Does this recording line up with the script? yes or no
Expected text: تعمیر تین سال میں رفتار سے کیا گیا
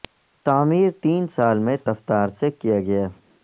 yes